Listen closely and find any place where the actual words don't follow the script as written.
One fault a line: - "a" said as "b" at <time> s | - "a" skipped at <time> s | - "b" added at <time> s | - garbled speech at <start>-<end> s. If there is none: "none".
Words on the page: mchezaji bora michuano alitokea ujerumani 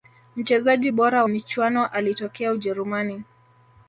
none